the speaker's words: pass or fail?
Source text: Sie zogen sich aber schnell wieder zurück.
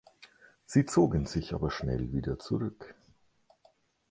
pass